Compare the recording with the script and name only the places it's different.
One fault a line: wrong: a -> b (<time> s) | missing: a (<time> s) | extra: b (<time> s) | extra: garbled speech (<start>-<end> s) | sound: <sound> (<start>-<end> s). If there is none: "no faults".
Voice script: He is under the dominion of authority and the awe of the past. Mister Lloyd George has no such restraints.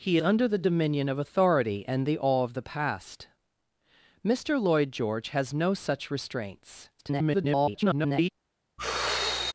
missing: is (0.2 s)
extra: garbled speech (7.0-8.3 s)
sound: sigh (8.8-9.5 s)